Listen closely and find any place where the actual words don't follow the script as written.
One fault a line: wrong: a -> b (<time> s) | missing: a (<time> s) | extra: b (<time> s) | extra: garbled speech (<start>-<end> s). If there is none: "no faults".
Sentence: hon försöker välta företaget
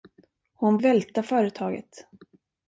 missing: försöker (0.8 s)